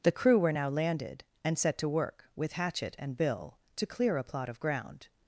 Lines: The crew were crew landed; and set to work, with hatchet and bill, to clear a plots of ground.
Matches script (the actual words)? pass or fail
fail